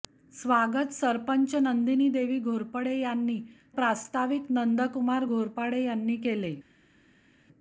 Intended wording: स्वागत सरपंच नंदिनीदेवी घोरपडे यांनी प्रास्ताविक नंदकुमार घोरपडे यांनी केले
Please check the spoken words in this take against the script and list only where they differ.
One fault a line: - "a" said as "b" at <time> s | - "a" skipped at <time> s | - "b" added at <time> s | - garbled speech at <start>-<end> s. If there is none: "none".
none